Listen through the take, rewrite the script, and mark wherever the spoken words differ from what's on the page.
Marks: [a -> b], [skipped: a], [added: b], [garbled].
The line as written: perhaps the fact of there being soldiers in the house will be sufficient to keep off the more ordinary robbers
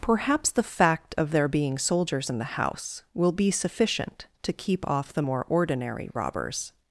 perhaps the fact of there being soldiers in the house will be sufficient to keep off the more ordinary robbers